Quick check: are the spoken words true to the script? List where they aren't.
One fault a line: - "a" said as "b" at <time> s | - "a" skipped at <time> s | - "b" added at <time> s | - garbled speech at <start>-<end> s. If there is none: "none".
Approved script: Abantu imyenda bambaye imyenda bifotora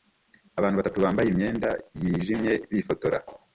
- "imyenda" said as "batatu" at 0.8 s
- "yijimye" added at 2.0 s